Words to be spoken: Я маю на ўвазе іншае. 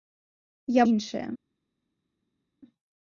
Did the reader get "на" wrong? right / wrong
wrong